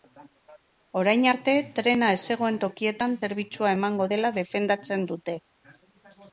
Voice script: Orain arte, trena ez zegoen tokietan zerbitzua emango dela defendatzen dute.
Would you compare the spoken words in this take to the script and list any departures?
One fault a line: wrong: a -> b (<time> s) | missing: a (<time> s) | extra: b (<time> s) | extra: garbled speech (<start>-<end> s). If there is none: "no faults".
no faults